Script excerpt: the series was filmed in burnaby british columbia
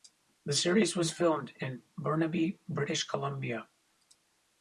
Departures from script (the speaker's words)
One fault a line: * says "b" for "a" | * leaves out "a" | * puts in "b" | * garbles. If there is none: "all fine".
all fine